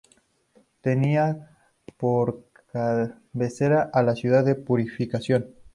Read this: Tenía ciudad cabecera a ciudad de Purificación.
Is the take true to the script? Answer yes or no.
no